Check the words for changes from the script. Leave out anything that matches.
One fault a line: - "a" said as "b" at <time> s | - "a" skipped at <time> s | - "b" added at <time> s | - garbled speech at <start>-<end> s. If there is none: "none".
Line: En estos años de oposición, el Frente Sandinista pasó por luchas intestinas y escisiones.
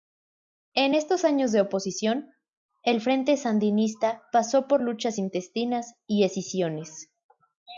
none